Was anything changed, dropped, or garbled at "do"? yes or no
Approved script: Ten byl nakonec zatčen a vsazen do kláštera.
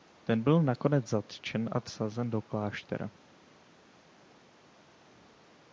no